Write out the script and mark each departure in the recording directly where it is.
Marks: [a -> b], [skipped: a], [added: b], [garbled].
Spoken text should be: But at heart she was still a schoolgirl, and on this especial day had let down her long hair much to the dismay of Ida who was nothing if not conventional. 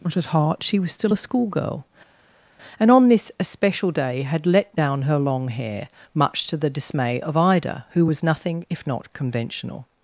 But at heart she was still a schoolgirl, and on this especial day had let down her long hair much to the dismay of Ida who was nothing if not conventional.